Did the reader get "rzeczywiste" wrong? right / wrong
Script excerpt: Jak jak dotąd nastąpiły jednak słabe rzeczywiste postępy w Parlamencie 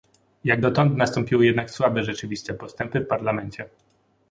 right